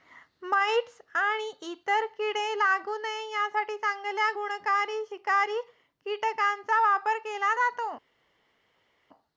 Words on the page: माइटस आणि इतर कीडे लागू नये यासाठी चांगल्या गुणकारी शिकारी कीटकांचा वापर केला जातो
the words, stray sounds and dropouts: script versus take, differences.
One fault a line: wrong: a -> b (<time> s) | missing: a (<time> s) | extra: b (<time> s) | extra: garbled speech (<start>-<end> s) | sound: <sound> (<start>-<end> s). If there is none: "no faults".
no faults